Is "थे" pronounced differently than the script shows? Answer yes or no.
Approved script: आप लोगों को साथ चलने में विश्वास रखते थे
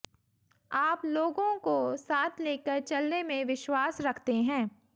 yes